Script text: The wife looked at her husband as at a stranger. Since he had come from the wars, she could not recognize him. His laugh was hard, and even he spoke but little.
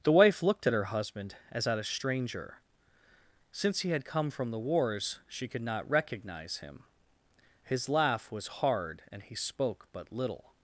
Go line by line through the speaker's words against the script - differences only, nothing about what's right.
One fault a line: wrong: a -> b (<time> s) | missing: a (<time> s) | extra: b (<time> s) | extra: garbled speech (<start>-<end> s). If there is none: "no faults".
missing: even (9.2 s)